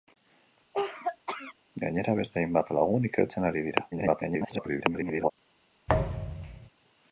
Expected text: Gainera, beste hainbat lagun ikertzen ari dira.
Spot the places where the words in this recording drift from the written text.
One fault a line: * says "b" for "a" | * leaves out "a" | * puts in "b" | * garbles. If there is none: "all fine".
* garbles